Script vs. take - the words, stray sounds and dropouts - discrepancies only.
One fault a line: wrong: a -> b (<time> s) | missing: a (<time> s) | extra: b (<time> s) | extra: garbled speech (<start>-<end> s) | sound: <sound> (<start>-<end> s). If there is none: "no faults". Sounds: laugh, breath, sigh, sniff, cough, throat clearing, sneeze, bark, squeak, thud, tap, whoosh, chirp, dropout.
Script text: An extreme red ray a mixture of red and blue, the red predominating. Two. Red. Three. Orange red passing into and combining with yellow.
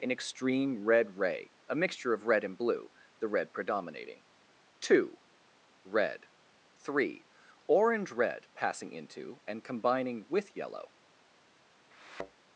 sound: thud (11.9-12.4 s)